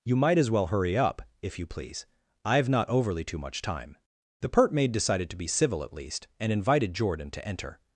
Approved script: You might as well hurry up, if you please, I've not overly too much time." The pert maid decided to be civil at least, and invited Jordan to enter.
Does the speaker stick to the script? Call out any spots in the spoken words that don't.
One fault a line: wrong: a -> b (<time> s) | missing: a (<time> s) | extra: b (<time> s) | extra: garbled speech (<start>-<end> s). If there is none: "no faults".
no faults